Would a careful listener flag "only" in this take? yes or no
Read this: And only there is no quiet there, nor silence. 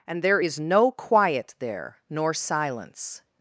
yes